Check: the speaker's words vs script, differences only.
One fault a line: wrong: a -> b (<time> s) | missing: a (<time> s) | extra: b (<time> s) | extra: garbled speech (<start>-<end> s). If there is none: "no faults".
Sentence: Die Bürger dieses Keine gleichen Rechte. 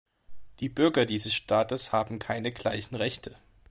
extra: Staates haben (1.3 s)